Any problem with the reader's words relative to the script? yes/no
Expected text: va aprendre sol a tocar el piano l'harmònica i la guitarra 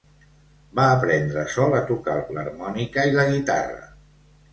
yes